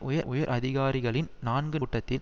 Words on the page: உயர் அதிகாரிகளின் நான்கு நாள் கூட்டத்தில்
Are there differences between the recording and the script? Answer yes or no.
yes